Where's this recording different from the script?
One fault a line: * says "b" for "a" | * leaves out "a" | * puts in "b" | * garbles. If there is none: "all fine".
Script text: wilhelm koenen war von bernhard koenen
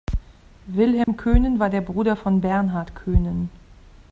* puts in "der bruder"